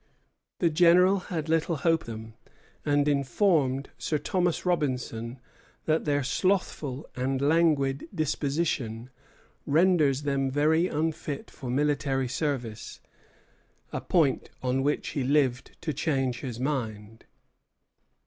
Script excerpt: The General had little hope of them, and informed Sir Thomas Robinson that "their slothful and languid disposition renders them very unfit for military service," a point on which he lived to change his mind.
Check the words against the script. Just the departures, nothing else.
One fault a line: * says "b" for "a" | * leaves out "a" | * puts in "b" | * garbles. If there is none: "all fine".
* leaves out "of"